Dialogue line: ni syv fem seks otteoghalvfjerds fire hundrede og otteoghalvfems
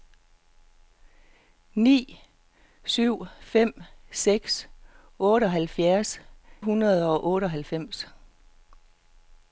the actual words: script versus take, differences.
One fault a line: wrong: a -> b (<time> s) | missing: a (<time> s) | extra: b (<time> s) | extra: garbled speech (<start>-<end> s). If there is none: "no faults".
missing: fire (6.2 s)